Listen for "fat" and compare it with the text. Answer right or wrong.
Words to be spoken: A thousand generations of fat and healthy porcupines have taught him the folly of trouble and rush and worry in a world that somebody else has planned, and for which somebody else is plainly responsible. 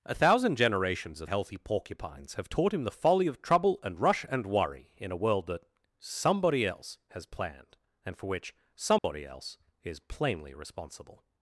wrong